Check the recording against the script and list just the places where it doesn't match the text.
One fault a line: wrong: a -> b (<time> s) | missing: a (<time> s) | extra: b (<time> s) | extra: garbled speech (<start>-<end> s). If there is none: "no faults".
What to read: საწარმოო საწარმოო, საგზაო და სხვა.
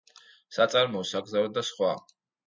missing: საწარმოო (1.0 s)